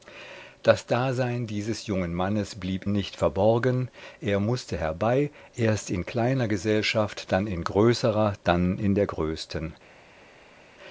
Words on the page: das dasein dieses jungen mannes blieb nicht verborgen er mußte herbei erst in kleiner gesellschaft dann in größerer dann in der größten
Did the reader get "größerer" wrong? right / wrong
right